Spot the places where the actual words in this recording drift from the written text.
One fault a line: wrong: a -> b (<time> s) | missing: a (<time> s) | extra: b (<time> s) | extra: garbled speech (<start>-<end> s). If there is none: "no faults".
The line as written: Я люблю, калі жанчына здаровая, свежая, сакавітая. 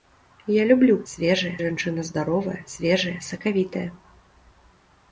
wrong: калі -> свежая (1.1 s)